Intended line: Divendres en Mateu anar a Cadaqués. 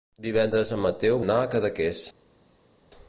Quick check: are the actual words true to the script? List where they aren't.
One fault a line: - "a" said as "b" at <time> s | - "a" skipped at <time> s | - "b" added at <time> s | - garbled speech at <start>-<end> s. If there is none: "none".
none